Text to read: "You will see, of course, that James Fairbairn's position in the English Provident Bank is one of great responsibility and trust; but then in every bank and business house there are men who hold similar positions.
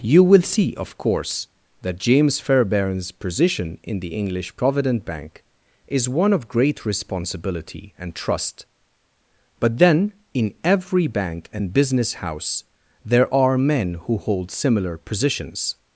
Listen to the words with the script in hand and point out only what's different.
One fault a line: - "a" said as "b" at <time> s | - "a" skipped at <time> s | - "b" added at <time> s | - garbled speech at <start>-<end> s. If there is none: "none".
none